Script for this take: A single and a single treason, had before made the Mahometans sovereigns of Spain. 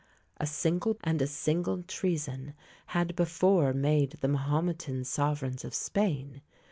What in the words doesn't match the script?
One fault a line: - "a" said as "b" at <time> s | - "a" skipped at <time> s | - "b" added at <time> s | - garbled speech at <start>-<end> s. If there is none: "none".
none